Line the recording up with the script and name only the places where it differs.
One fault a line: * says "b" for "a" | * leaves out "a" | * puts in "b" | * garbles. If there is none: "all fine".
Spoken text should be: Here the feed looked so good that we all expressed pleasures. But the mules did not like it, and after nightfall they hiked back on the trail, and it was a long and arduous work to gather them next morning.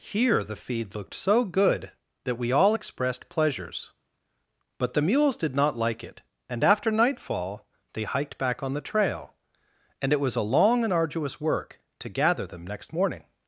all fine